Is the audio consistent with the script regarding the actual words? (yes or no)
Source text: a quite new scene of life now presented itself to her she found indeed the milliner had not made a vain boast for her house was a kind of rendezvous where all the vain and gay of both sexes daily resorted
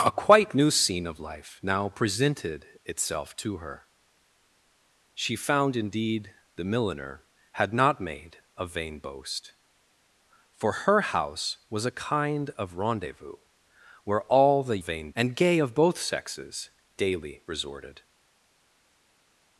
yes